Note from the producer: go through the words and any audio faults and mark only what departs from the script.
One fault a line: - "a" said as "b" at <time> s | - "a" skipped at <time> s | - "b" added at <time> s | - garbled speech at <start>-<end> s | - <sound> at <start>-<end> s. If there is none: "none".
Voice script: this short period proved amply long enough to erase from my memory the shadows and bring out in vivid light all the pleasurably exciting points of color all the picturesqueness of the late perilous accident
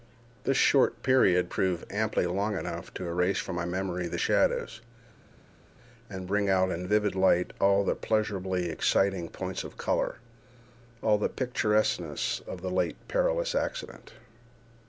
none